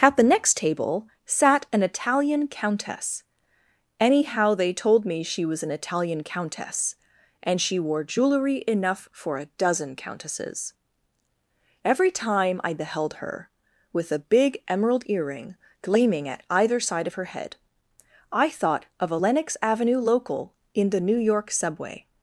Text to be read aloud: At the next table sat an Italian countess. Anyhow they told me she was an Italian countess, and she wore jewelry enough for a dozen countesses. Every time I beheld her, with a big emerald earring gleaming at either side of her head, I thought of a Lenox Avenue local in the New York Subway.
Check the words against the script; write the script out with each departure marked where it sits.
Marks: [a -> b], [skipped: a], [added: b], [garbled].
At the next table sat an Italian countess. Anyhow they told me she was an Italian countess, and she wore jewelry enough for a dozen countesses. Every time I beheld her, with a big emerald earring gleaming at either side of her head, I thought of a Lenox Avenue local in the New York Subway.